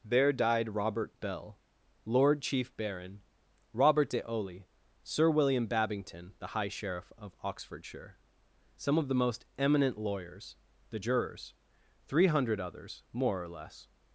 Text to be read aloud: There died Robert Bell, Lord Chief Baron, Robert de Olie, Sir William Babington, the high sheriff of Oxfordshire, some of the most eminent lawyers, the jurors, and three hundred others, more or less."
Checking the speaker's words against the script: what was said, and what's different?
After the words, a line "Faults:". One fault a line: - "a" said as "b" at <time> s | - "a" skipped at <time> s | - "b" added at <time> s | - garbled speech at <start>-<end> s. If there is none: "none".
There died Robert Bell, Lord Chief Baron, Robert de Olie, Sir William Babington, the high sheriff of Oxfordshire, some of the most eminent lawyers, the jurors, three hundred others, more or less."
Faults:
- "and" skipped at 11.5 s